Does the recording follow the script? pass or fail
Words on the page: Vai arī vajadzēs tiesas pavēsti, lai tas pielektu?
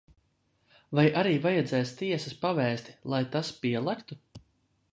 pass